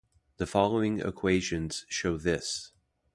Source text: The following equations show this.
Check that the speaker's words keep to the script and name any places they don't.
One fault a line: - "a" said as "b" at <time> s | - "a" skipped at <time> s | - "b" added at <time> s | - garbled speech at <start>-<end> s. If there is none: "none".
none